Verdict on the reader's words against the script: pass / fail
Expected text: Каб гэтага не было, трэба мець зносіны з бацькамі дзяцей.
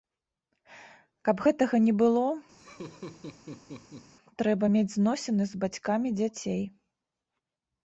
pass